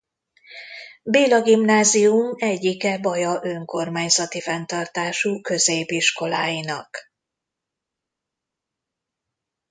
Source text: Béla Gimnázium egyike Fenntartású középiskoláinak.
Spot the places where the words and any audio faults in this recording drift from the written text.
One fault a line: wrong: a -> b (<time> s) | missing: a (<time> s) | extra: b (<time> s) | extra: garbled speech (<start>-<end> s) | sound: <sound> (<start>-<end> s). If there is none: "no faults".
extra: Baja önkormányzati (3.0 s)